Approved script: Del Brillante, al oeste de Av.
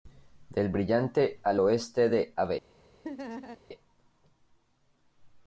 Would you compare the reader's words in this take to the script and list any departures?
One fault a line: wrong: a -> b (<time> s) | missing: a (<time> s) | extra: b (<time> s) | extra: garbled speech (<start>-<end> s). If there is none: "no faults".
no faults